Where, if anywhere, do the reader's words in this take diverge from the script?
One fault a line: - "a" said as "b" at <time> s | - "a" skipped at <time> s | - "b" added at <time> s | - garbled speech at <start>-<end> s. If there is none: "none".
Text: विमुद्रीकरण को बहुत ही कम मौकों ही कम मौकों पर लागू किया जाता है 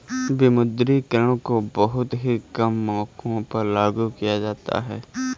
- "ही कम मौकों" skipped at 3.4 s